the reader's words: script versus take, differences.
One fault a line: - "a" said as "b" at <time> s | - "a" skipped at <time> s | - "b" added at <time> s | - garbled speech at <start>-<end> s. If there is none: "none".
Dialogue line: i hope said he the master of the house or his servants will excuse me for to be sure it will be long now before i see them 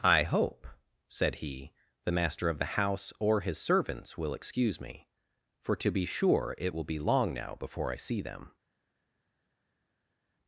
none